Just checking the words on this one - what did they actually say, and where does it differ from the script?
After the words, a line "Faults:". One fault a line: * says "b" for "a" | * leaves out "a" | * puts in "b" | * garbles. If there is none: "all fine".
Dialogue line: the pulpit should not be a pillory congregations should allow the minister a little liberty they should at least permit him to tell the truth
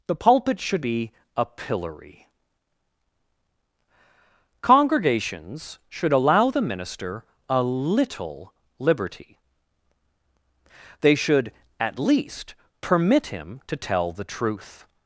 the pulpit should be a pillory congregations should allow the minister a little liberty they should at least permit him to tell the truth
Faults:
* leaves out "not"